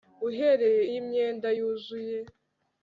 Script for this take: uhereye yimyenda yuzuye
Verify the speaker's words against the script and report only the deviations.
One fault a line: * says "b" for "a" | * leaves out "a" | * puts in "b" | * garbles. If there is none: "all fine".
all fine